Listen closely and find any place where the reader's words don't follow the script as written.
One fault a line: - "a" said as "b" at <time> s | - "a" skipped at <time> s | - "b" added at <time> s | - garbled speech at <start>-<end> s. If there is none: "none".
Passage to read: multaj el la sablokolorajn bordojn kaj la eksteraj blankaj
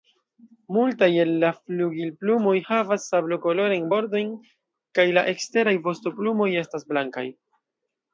- "flugilplumoj havas" added at 1.6 s
- "vostoplumoj estas" added at 5.9 s